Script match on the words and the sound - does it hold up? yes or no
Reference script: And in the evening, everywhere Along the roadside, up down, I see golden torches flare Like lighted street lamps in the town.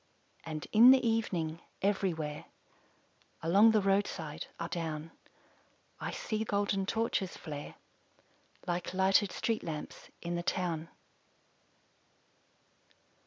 yes